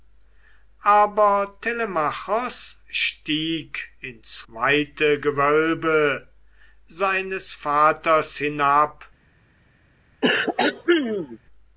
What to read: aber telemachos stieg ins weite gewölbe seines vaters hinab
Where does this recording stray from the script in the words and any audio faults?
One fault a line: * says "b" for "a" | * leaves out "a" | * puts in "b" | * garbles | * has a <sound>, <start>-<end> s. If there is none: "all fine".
* has a throat clearing, 10.2-11.4 s